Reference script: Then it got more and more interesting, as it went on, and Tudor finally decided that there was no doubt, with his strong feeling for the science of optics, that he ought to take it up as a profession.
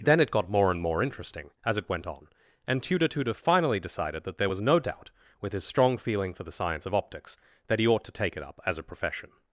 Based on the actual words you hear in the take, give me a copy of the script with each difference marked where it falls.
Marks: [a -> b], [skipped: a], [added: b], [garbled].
Then it got more and more interesting, as it went on, and Tudor [added: Tudor] finally decided that there was no doubt, with his strong feeling for the science of optics, that he ought to take it up as a profession.